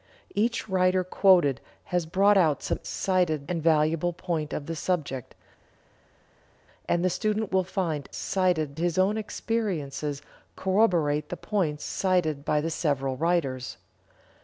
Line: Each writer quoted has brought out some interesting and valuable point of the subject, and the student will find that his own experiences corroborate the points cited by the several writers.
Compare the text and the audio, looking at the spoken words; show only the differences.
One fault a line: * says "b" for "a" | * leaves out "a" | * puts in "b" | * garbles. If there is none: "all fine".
* says "cited" for "interesting"
* says "cited" for "that"